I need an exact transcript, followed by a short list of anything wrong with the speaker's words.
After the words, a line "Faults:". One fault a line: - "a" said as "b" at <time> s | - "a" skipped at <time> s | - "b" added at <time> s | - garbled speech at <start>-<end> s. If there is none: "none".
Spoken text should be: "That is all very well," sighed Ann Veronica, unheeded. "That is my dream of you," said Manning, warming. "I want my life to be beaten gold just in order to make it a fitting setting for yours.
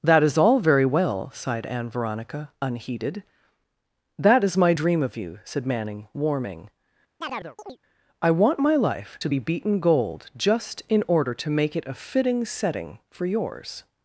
"That is all very well," sighed Ann Veronica, unheeded. "That is my dream of you," said Manning, warming. "I want my life to be beaten gold just in order to make it a fitting setting for yours.
Faults:
none